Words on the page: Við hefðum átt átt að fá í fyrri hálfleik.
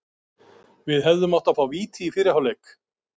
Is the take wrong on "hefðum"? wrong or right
right